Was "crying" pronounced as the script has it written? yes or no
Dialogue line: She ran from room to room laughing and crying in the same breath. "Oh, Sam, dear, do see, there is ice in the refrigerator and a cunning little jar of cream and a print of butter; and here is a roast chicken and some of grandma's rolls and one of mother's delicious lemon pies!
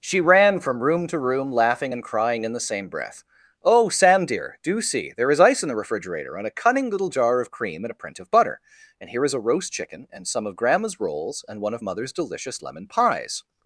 yes